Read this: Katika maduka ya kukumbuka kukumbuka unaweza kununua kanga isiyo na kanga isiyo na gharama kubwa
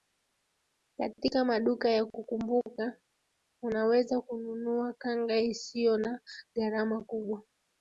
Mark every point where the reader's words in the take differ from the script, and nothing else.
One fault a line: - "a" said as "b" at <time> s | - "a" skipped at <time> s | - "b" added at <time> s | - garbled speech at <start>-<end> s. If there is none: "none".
- "kukumbuka" skipped at 3.0 s
- "kanga isiyo na" skipped at 6.2 s